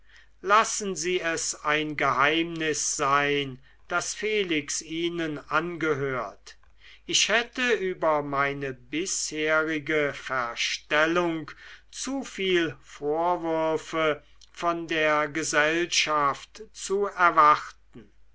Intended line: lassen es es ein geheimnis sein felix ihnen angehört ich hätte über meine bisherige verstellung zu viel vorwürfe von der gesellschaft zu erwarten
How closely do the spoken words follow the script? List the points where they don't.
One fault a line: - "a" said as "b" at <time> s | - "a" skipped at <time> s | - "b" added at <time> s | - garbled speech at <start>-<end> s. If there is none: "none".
- "es" said as "sie" at 0.9 s
- "daß" added at 3.9 s